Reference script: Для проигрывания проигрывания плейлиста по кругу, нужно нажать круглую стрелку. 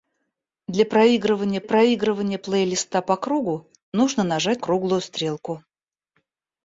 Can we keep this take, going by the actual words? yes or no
yes